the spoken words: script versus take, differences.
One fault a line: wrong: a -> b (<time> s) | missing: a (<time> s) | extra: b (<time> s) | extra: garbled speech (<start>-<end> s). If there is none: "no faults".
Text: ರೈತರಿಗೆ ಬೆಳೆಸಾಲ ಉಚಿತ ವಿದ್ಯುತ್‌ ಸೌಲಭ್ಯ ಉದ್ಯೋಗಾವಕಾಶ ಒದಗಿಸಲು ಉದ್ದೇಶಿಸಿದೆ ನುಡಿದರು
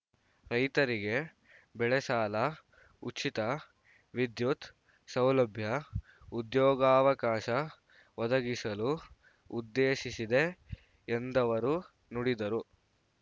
extra: ಎಂದವರು (11.1 s)